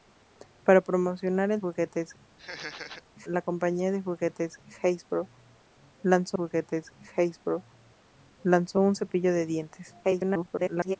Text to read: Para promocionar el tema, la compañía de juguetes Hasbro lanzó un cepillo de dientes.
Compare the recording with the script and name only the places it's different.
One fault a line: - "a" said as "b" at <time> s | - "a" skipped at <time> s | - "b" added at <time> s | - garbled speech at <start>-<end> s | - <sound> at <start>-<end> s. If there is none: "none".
- "tema" said as "juguetes" at 1.6 s
- laugh at 2.4-3.0 s
- "juguetes Hasbro lanzó" added at 6.3 s
- garbled speech at 10.0-11.0 s